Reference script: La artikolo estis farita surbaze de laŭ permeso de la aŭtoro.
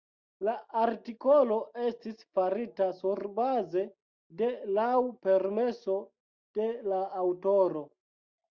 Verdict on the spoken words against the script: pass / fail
pass